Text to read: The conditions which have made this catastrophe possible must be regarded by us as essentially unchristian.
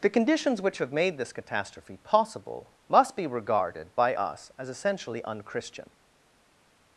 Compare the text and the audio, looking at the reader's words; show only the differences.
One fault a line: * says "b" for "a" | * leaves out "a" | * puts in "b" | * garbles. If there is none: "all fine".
all fine